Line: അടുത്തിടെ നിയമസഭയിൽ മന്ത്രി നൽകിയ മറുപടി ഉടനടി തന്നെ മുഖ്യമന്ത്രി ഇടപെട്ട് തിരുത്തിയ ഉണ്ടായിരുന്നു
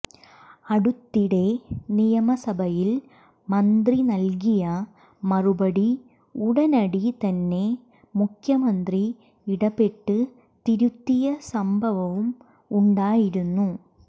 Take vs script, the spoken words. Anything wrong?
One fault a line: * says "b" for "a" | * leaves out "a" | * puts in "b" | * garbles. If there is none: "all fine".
* puts in "സംഭവവും"